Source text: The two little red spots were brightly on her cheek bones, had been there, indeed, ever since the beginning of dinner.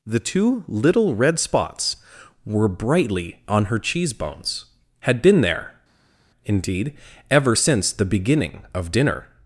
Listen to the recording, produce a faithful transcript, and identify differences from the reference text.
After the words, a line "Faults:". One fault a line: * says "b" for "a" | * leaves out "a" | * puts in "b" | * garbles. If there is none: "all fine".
The two little red spots were brightly on her cheese bones, had been there, indeed, ever since the beginning of dinner.
Faults:
* says "cheese" for "cheek"